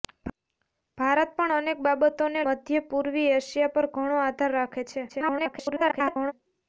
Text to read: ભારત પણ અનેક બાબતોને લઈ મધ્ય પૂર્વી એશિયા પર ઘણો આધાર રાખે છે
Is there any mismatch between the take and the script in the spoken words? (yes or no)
yes